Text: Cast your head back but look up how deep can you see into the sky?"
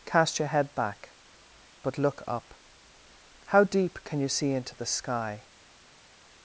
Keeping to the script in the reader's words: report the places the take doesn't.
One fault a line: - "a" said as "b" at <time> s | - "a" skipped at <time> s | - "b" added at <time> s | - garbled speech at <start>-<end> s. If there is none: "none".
none